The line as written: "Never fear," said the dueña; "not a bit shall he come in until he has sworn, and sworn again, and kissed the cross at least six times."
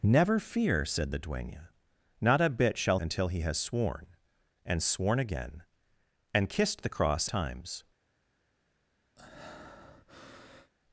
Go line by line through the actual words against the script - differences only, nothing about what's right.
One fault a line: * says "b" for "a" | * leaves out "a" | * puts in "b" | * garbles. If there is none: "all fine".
* leaves out "he come in"
* leaves out "at least six"